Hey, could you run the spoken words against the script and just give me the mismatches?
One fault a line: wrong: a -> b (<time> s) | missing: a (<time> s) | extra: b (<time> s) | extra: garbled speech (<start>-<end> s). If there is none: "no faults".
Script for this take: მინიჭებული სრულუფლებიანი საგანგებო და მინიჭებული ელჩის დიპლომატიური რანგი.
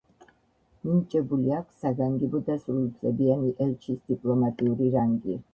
wrong: სრულუფლებიანი -> აქვს (1.6 s)
wrong: მინიჭებული -> სრულუფლებიანი (2.6 s)